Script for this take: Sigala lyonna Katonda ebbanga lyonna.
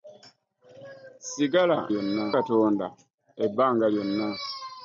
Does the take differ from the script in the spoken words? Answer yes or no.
no